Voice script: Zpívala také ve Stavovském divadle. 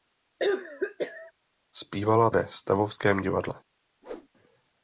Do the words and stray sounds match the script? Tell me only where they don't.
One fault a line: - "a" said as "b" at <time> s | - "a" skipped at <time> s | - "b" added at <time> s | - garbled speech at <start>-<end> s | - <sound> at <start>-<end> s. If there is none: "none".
- cough at 0.4-1.3 s
- "také" skipped at 2.3 s
- whoosh at 4.0-4.3 s